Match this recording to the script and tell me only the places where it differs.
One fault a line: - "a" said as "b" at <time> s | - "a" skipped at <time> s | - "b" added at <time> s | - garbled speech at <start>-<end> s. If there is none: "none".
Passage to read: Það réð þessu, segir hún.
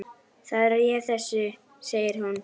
none